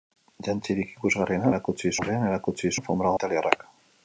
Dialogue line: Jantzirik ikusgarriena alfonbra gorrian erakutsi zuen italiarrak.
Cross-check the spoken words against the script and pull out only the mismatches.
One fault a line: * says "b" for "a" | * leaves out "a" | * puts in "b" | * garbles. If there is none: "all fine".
* says "erakutsi" for "alfonbra"
* says "alfonbra" for "zuen"